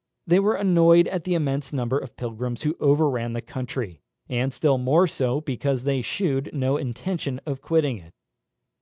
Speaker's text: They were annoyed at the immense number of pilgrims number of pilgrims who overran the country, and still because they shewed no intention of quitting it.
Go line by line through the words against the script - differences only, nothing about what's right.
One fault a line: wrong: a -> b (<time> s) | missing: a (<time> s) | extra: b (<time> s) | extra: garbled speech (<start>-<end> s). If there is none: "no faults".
missing: number of pilgrims (2.6 s)
extra: more so (4.8 s)